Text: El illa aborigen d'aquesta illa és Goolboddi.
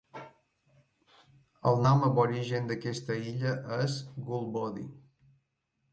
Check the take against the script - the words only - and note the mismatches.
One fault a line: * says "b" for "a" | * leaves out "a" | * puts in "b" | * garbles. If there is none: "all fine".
* says "nom" for "illa"